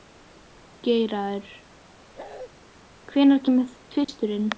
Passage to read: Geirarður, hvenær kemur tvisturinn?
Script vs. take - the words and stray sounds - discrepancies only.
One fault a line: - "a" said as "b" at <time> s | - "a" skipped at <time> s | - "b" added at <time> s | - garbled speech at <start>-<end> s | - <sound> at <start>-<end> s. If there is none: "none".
- bark at 2.1-2.5 s
- dropout at 4.0-4.1 s